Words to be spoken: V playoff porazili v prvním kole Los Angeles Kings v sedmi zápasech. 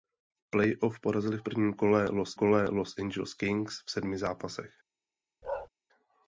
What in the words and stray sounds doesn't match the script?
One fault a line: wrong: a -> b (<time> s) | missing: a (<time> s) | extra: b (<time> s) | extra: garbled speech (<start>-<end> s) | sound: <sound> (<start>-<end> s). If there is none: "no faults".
extra: kole Los (2.3 s)
sound: bark (5.4-5.7 s)